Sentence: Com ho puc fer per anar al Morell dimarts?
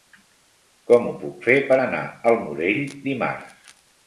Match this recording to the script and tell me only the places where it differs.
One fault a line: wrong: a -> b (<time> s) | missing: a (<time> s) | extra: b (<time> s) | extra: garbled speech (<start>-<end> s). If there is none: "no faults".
no faults